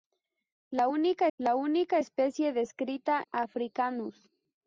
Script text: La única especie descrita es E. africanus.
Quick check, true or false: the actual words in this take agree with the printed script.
false